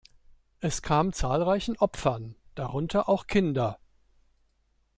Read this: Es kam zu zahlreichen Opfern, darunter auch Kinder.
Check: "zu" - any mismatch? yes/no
yes